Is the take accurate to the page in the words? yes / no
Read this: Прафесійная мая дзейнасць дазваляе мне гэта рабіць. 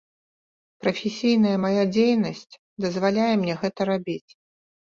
yes